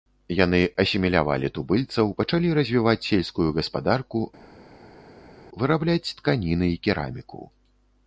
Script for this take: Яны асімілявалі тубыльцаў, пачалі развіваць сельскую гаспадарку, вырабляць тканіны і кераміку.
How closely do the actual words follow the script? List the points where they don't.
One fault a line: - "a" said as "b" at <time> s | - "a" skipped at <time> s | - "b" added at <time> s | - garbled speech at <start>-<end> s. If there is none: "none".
none